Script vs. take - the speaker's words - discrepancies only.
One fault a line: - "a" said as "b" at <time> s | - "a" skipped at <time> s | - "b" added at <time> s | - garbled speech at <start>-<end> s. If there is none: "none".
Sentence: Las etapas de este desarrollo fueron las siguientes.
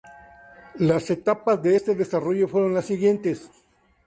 none